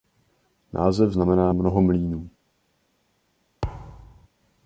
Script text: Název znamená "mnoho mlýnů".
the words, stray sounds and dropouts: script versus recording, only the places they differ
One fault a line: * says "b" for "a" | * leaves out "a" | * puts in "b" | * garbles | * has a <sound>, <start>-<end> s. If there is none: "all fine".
* has a thud, 3.6-4.3 s